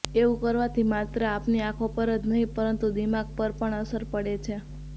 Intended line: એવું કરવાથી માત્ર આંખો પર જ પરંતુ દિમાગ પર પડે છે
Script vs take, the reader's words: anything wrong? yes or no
yes